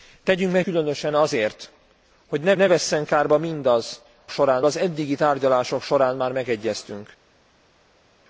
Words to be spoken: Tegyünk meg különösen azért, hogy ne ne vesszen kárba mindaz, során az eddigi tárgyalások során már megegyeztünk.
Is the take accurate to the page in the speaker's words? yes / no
yes